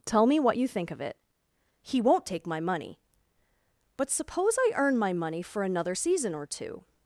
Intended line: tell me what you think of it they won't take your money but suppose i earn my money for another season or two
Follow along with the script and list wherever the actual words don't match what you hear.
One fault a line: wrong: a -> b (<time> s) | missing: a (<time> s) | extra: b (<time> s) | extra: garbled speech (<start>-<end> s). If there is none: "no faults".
wrong: they -> he (1.8 s)
wrong: your -> my (2.4 s)